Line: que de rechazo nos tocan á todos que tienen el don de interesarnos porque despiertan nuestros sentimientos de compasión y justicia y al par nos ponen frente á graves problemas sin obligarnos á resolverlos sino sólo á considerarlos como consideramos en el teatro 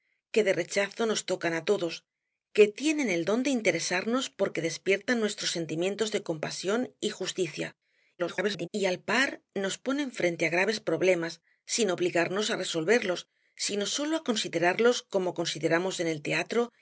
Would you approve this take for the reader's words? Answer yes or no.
no